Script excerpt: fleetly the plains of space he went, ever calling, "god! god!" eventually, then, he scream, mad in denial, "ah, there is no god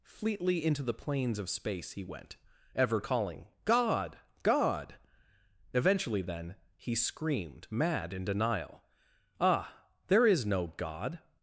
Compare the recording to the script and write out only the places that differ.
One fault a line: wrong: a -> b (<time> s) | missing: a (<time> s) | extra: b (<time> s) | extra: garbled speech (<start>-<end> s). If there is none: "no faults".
extra: into (0.6 s)
wrong: scream -> screamed (6.9 s)